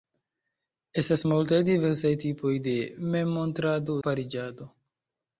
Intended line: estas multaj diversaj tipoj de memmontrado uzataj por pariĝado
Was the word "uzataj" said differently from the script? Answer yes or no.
yes